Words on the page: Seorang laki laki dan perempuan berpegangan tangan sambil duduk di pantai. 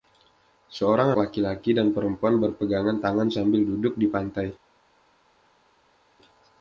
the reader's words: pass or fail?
pass